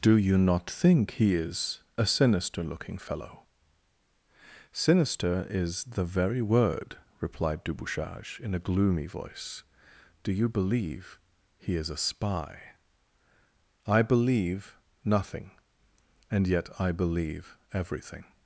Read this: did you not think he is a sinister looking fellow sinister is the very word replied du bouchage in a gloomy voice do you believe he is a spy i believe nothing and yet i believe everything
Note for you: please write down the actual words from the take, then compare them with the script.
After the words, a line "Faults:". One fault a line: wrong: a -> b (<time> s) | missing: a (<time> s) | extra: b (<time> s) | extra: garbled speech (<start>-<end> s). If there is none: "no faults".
do you not think he is a sinister looking fellow sinister is the very word replied du bouchage in a gloomy voice do you believe he is a spy i believe nothing and yet i believe everything
Faults:
wrong: did -> do (0.0 s)